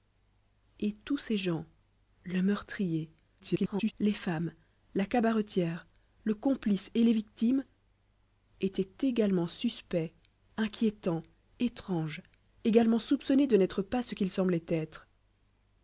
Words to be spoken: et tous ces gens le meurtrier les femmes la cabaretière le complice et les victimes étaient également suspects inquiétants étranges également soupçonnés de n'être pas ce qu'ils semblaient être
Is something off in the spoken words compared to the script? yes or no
yes